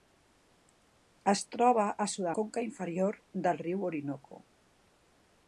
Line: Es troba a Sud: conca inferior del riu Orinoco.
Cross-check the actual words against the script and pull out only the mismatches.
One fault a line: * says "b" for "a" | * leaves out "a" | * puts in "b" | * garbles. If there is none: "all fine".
all fine